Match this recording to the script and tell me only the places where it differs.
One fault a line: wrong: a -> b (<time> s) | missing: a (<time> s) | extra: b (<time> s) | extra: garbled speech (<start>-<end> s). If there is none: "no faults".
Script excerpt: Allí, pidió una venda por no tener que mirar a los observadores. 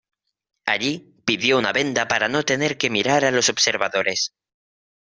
wrong: por -> para (2.1 s)